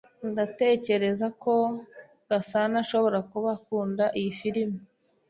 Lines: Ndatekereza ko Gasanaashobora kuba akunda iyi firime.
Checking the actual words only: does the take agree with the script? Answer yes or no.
yes